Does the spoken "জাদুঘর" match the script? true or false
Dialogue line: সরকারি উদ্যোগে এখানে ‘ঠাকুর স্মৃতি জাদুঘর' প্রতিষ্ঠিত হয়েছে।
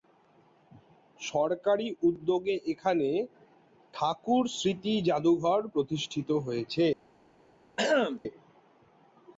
true